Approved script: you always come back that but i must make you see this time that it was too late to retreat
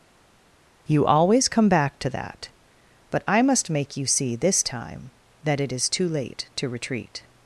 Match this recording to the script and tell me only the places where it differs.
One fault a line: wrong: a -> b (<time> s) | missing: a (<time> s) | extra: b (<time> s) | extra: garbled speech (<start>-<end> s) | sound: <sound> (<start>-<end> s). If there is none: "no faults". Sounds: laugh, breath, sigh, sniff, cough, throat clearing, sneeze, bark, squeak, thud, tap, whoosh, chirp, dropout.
extra: to (2.0 s)
wrong: was -> is (5.7 s)